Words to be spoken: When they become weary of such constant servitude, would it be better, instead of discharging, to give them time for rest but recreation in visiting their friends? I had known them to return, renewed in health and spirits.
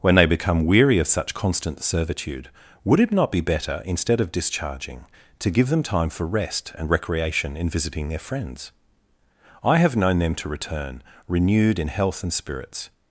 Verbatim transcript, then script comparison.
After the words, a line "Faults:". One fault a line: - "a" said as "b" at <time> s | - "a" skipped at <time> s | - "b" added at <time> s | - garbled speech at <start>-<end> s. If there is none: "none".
When they become weary of such constant servitude, would it not be better, instead of discharging, to give them time for rest and recreation in visiting their friends? I have known them to return, renewed in health and spirits.
Faults:
- "not" added at 3.1 s
- "but" said as "and" at 6.8 s
- "had" said as "have" at 9.8 s